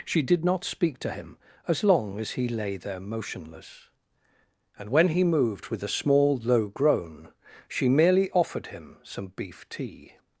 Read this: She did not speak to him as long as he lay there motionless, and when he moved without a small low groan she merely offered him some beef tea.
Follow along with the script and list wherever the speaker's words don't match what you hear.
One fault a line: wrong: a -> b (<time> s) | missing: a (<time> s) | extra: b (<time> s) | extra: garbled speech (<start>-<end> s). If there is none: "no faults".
wrong: without -> with (5.7 s)